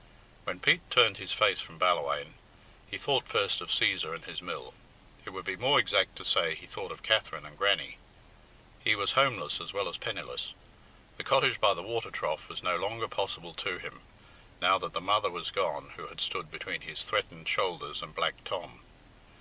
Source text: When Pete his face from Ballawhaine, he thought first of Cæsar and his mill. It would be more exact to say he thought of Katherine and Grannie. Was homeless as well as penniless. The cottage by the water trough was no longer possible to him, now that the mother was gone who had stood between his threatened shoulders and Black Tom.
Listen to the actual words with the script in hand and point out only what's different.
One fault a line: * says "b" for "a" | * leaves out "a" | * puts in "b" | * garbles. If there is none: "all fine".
* puts in "turned"
* puts in "He"